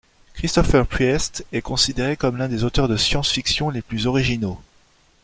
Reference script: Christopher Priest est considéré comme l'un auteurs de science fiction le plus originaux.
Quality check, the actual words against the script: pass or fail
fail